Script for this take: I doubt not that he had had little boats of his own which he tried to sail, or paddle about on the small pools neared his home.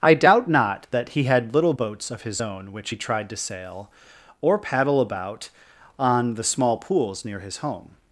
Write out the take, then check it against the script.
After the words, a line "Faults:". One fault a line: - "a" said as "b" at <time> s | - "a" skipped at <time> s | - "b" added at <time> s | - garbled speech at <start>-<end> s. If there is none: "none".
I doubt not that he had little boats of his own which he tried to sail, or paddle about on the small pools near his home.
Faults:
- "had" skipped at 1.5 s
- "neared" said as "near" at 7.2 s